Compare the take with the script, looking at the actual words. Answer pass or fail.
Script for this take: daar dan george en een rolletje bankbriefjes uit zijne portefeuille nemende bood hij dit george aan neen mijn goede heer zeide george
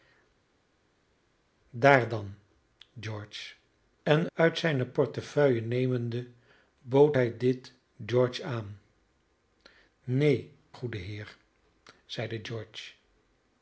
fail